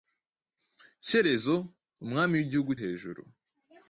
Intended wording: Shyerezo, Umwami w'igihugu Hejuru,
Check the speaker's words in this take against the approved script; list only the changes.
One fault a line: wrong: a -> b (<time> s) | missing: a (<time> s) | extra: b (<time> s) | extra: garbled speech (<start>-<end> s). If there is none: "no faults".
no faults